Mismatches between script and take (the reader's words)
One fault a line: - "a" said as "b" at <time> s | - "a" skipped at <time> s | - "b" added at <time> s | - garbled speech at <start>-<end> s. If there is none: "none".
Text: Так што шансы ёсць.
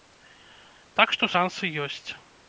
none